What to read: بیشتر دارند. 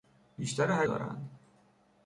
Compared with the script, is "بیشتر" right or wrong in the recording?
right